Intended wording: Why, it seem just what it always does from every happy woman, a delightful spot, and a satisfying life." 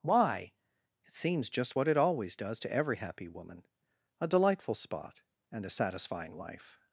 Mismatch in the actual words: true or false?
true